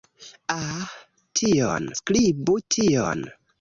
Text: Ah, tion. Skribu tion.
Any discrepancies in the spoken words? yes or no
no